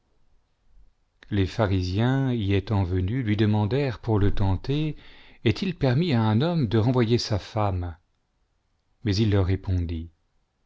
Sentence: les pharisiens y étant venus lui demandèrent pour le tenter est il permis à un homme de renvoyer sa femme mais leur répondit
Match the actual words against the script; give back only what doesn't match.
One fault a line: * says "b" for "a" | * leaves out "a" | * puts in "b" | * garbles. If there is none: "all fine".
* puts in "il"